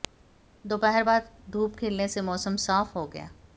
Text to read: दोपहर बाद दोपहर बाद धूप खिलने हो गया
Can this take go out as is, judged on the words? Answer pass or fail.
fail